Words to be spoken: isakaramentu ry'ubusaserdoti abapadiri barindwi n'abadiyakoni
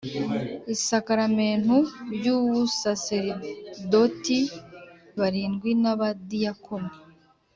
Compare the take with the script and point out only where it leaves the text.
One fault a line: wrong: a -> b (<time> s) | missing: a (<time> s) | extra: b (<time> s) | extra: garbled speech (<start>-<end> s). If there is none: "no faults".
missing: abapadiri (4.4 s)